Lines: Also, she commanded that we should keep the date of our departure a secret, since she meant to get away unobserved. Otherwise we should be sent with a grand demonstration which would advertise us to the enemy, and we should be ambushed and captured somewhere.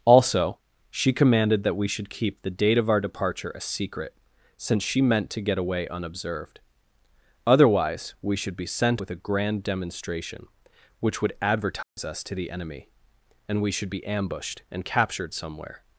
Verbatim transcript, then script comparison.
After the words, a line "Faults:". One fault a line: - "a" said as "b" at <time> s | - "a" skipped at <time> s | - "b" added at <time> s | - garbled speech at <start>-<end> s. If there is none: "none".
Also, she commanded that we should keep the date of our departure a secret, since she meant to get away unobserved. Otherwise we should be sent with a grand demonstration which would advertise us to the enemy, and we should be ambushed and captured somewhere.
Faults:
none